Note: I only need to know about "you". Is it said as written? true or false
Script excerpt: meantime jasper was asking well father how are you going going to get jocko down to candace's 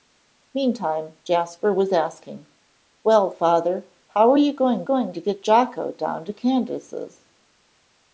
true